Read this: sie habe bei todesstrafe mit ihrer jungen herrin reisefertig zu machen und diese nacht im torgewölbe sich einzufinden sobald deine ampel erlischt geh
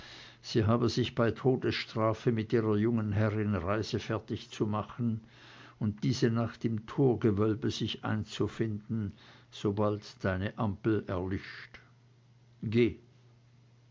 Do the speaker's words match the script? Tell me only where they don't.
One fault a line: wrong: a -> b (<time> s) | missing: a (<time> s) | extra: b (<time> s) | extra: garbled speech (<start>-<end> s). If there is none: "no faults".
extra: sich (0.9 s)